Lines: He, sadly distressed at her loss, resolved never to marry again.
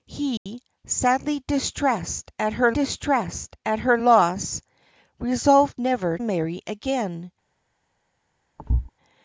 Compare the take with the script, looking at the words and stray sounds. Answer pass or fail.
fail